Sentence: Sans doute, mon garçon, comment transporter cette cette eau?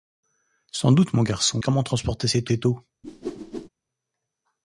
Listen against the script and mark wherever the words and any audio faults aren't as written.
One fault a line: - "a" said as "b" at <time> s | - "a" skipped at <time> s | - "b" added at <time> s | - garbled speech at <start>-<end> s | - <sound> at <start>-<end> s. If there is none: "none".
- whoosh at 3.0-3.7 s